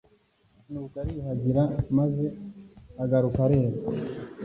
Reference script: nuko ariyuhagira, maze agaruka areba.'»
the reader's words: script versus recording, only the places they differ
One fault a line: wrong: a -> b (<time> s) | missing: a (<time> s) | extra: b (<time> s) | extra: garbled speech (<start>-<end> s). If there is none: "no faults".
no faults